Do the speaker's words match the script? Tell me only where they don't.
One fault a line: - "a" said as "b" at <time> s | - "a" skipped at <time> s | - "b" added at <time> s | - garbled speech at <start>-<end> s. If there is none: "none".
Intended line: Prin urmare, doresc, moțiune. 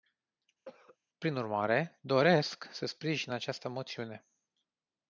- "să sprijin această" added at 2.7 s